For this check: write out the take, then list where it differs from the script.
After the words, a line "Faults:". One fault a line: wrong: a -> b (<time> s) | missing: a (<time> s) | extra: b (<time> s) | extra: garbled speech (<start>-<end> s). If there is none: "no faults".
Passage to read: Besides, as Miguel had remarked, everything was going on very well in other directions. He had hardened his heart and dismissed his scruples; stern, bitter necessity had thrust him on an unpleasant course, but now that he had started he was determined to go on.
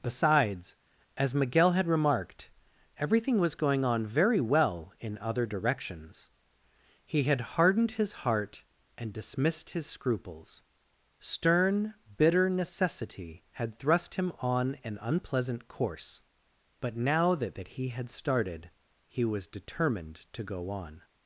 Besides, as Miguel had remarked, everything was going on very well in other directions. He had hardened his heart and dismissed his scruples; stern, bitter necessity had thrust him on an unpleasant course, but now that that he had started he was determined to go on.
Faults:
extra: that (17.5 s)